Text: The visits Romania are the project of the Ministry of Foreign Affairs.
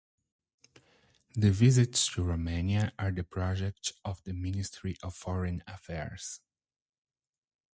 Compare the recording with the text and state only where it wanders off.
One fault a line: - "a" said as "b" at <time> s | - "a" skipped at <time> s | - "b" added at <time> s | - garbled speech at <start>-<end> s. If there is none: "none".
- "to" added at 2.1 s